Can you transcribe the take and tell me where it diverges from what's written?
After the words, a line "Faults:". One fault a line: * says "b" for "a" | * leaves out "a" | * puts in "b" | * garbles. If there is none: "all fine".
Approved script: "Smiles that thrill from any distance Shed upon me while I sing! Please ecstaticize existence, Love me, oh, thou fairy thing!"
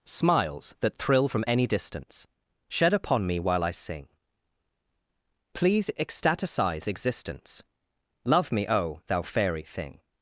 "Smiles that thrill from any distance Shed upon me while I sing! Please ecstaticize existence, Love me, oh, thou fairy thing!"
Faults:
all fine